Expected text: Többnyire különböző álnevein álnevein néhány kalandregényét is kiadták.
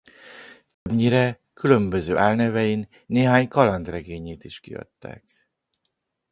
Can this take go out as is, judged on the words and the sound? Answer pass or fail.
fail